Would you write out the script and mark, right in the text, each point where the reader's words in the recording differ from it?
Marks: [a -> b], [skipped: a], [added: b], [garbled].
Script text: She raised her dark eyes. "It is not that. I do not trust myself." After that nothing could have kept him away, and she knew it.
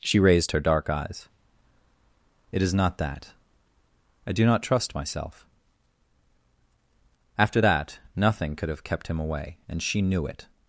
She raised her dark eyes. "It is not that. I do not trust myself." After that nothing could have kept him away, and she knew it.